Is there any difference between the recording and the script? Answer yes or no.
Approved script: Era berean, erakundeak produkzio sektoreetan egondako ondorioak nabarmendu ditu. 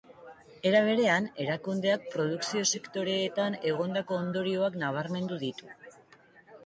no